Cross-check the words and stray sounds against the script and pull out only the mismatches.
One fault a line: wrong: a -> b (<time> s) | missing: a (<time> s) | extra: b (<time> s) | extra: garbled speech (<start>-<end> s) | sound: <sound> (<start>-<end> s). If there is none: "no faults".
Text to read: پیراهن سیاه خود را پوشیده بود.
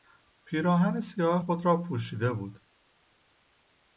no faults